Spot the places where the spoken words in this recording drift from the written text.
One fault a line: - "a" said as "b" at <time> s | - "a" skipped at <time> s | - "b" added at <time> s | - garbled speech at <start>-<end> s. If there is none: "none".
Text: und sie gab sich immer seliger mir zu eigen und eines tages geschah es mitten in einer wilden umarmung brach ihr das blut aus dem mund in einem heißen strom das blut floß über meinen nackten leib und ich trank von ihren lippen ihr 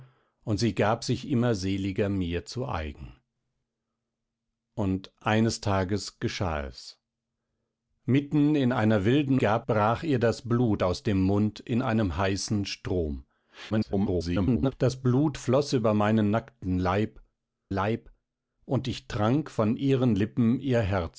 - "umarmung" said as "gab" at 9.4 s
- garbled speech at 13.7-14.7 s
- "leib" added at 17.7 s